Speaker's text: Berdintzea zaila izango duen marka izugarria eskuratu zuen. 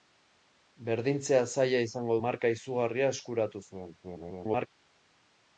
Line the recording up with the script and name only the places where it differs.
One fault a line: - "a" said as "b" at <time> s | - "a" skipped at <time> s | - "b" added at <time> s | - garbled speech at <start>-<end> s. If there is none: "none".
- "duen" skipped at 2.1 s
- garbled speech at 4.0-4.7 s